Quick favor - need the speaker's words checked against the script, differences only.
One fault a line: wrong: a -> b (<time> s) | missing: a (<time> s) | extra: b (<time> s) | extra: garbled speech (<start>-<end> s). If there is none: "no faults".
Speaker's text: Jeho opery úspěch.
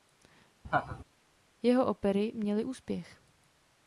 extra: měly (2.3 s)